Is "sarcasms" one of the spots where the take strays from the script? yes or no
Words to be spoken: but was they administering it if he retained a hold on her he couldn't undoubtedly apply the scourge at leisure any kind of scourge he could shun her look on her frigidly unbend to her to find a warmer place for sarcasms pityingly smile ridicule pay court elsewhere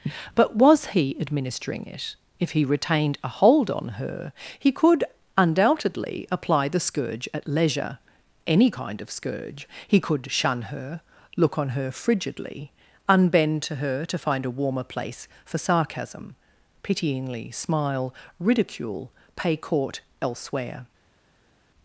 yes